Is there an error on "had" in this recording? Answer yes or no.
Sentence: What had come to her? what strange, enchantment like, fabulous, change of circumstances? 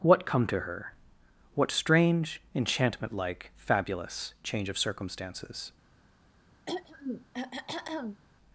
yes